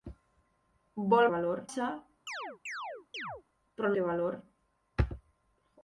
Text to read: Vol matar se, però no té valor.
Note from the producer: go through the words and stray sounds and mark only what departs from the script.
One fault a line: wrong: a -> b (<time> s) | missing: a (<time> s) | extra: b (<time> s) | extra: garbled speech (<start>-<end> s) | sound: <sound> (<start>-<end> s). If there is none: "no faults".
wrong: matar -> valor (1.3 s)
sound: chirp (2.3-3.4 s)
missing: no (3.9 s)